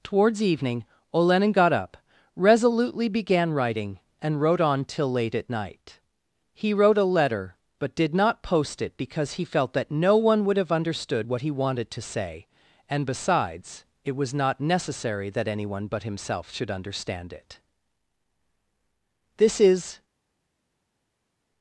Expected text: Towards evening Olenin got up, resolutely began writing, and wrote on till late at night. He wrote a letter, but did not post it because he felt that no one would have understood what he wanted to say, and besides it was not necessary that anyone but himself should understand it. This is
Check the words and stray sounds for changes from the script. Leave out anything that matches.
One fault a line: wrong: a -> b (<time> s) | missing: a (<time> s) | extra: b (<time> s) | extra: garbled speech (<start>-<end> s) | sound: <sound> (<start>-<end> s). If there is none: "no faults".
no faults